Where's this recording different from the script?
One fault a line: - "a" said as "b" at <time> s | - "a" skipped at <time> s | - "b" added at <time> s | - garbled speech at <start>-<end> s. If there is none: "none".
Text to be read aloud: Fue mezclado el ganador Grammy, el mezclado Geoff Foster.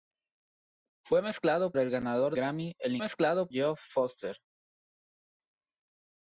none